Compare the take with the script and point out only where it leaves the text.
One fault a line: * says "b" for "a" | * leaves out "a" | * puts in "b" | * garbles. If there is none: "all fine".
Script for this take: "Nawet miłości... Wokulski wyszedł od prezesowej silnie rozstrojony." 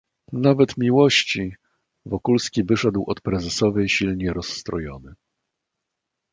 all fine